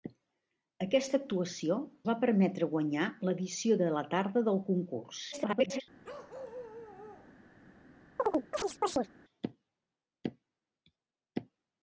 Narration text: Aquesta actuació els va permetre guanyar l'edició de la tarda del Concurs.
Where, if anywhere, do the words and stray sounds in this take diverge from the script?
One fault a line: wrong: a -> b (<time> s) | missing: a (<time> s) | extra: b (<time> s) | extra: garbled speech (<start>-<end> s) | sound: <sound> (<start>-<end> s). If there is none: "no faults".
missing: els (1.8 s)
extra: garbled speech (5.3-5.8 s)
sound: bark (6.0-7.4 s)
sound: chirp (8.2-9.1 s)